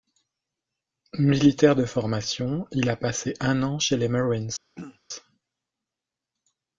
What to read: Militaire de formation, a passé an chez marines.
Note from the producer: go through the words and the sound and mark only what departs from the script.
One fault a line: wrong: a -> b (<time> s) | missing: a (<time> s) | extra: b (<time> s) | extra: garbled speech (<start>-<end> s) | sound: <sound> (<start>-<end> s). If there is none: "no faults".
extra: il (2.7 s)
extra: un (3.4 s)
extra: les (4.0 s)
sound: throat clearing (4.8-5.0 s)